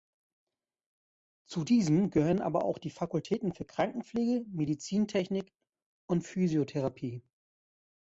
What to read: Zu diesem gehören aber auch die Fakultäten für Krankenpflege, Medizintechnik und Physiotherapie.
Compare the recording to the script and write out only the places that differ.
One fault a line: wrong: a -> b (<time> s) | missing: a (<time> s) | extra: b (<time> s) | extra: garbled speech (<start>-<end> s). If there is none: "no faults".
no faults